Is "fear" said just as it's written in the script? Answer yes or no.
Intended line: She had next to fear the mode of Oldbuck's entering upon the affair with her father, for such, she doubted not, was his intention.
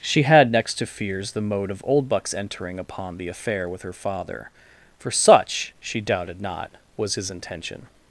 no